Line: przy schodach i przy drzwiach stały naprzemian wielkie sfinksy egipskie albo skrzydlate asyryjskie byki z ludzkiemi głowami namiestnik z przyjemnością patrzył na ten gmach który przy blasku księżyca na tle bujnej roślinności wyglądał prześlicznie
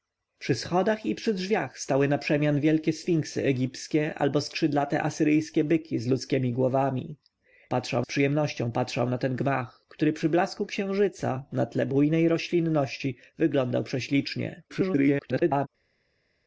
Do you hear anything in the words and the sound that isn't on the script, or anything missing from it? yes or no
yes